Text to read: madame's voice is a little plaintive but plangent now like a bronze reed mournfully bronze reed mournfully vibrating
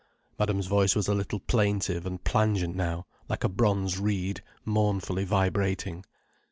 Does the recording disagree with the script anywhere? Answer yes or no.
yes